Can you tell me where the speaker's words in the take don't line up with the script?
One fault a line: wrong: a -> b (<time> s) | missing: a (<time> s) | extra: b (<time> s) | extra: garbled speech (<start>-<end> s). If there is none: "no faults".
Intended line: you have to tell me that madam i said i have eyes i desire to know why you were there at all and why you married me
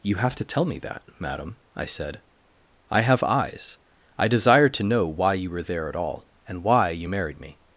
no faults